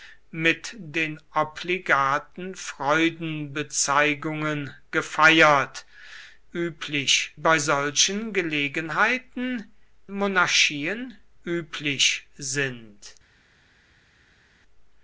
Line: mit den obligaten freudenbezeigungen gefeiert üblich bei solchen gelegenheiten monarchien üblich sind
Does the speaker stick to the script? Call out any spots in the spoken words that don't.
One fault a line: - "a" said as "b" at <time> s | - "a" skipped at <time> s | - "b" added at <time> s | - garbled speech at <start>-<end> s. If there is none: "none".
none